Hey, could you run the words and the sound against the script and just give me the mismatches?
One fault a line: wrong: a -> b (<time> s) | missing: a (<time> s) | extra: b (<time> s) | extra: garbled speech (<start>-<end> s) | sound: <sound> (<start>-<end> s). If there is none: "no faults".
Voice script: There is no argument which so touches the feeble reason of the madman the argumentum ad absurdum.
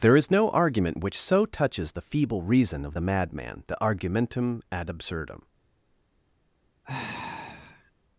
sound: sigh (6.8-7.9 s)